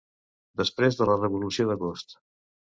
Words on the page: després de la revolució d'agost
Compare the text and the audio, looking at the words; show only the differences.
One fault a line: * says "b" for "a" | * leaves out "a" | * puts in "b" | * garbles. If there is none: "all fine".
all fine